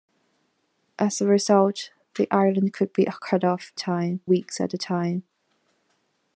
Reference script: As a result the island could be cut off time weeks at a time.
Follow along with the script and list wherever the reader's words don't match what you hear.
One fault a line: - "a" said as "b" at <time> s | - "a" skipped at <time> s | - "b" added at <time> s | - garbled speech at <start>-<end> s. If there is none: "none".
none